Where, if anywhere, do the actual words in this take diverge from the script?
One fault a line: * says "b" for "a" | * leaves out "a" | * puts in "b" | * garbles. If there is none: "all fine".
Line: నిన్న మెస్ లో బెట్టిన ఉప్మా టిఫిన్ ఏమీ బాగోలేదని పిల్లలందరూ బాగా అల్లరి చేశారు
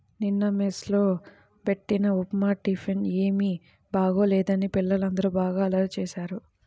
all fine